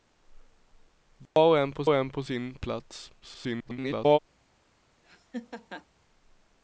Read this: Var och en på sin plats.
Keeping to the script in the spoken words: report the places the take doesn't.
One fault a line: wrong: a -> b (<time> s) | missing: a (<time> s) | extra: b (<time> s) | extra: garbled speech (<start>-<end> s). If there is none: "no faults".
extra: och en på (1.9 s)
extra: garbled speech (3.2-4.2 s)